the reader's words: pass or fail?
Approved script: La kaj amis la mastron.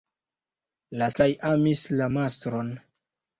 pass